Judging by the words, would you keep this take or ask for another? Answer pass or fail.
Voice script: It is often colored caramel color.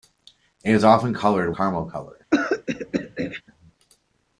pass